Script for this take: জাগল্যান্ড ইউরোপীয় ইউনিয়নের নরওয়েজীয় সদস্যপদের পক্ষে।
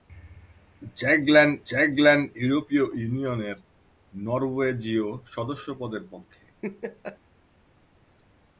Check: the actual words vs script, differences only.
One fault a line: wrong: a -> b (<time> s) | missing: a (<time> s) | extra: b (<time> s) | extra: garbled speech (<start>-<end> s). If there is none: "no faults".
extra: জাগল্যান্ড (1.7 s)